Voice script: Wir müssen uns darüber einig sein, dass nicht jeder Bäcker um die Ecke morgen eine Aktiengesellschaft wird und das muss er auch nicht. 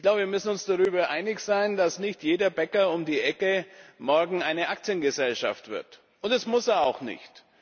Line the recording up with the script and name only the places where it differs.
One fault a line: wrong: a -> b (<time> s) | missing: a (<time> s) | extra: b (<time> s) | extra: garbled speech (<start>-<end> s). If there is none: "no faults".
no faults